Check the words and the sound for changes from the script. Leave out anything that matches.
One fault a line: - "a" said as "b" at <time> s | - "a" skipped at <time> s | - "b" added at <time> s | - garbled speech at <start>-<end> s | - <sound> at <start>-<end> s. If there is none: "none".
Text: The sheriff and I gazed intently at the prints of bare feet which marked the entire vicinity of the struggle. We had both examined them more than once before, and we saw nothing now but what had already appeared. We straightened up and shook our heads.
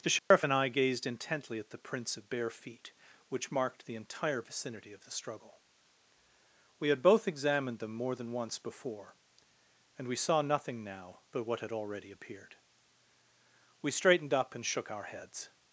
- dropout at 0.2-0.3 s